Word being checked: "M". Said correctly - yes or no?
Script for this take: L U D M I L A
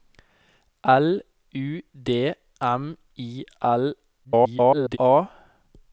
yes